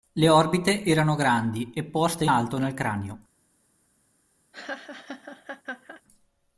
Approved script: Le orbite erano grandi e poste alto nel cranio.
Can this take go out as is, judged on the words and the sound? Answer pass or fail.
fail